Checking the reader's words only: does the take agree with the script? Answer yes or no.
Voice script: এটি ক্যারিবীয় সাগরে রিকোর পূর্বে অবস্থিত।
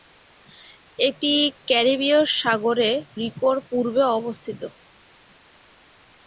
yes